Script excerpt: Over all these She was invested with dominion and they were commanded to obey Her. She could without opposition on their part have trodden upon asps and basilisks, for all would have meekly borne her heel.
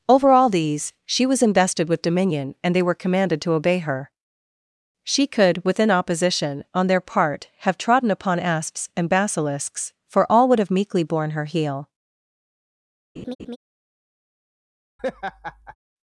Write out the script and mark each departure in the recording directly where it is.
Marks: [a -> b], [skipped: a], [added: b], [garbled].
Over all these She was invested with dominion and they were commanded to obey Her. She could [without -> within] opposition on their part have trodden upon asps and basilisks, for all would have meekly borne her heel.